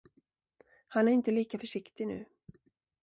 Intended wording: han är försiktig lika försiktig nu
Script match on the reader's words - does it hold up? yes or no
no